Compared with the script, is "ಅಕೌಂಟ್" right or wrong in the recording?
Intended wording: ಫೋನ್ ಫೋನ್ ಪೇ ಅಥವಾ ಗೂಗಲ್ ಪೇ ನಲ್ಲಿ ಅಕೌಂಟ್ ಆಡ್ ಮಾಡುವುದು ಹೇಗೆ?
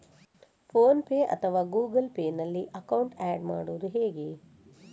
right